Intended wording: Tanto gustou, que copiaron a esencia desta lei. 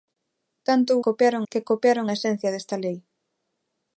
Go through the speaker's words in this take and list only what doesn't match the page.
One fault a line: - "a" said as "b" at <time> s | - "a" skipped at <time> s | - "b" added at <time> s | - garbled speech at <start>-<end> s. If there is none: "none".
- "gustou" said as "copiaron" at 1.1 s